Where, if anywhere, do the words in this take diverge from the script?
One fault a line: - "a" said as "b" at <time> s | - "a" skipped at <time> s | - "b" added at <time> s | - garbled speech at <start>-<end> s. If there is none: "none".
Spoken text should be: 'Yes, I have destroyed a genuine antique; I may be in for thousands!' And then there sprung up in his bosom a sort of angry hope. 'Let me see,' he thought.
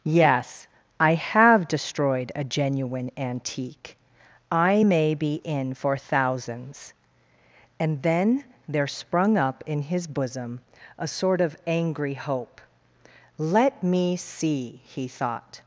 none